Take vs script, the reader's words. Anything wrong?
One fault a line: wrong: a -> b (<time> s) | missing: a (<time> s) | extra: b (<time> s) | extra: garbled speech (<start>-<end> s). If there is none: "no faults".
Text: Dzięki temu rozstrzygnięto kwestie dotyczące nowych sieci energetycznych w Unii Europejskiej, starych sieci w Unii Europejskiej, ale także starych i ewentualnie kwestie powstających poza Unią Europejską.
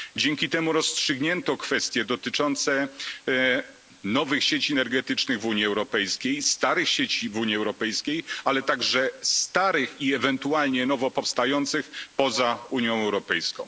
wrong: kwestie -> nowo (10.9 s)